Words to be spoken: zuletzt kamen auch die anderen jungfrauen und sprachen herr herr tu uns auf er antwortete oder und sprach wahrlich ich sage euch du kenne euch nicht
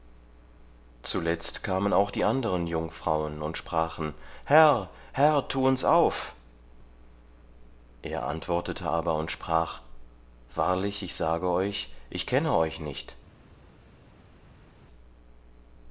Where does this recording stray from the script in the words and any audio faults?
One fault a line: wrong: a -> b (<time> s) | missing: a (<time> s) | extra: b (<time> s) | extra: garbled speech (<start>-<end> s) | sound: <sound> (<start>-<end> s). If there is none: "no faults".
wrong: oder -> aber (8.9 s)
wrong: du -> ich (12.1 s)